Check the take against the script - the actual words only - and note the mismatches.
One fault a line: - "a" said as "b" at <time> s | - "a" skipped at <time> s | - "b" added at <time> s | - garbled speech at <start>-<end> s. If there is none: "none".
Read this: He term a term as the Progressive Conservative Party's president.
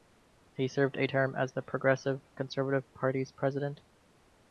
- "term" said as "served" at 0.7 s